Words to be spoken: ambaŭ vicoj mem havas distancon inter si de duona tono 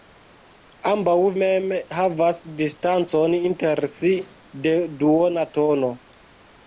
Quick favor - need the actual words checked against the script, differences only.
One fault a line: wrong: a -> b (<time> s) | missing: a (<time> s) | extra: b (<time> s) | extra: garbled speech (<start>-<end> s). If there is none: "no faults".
missing: vicoj (1.1 s)